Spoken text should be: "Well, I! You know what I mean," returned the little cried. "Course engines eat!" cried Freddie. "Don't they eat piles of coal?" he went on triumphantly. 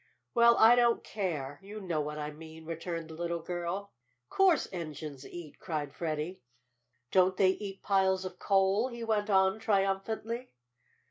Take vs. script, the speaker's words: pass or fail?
fail